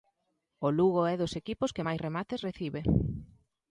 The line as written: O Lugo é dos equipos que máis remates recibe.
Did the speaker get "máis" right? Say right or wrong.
right